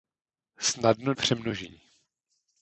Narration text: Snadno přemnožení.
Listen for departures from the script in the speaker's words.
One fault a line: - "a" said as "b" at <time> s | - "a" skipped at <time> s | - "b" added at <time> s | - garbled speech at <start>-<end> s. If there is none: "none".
none